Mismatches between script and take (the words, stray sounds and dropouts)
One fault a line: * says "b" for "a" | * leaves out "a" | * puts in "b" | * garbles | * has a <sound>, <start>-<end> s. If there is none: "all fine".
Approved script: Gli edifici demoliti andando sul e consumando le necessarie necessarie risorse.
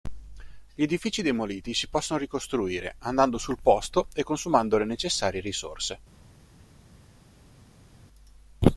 * puts in "si possono ricostruire"
* puts in "posto"
* leaves out "necessarie"